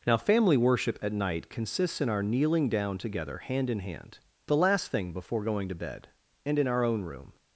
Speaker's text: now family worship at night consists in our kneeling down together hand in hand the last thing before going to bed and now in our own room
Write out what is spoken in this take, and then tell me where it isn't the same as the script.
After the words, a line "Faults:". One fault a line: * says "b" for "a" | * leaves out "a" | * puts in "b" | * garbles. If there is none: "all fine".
now family worship at night consists in our kneeling down together hand in hand the last thing before going to bed and in our own room
Faults:
* leaves out "now"